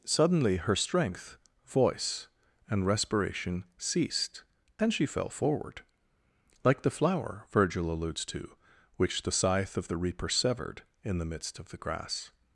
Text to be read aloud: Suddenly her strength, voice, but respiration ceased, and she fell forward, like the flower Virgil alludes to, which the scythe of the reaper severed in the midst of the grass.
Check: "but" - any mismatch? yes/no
yes